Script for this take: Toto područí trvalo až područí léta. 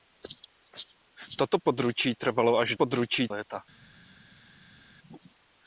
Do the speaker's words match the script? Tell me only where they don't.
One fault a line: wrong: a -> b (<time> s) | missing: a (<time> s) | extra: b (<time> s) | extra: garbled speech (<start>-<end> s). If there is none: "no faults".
no faults